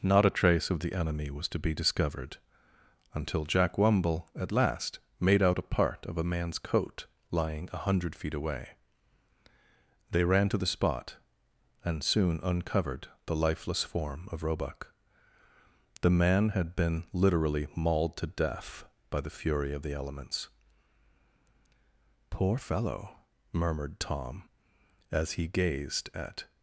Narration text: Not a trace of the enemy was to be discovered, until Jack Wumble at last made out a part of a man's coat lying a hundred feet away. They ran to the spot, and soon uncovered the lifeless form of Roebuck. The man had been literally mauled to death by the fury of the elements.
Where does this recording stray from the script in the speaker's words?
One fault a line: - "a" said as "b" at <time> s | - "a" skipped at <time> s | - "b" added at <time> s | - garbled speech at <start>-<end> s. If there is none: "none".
- "Poor fellow murmured Tom as he gazed at" added at 22.3 s